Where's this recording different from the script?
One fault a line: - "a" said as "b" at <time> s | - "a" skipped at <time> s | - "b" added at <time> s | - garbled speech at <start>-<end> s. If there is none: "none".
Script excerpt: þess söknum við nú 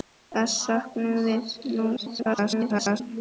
- garbled speech at 2.0-3.0 s